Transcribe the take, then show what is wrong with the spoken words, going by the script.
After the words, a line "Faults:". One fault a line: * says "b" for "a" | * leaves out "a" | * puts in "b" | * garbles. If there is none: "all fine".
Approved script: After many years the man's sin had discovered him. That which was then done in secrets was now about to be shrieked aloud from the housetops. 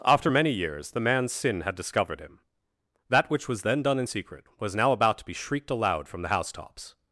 After many years the man's sin had discovered him. That which was then done in secret was now about to be shrieked aloud from the housetops.
Faults:
* says "secret" for "secrets"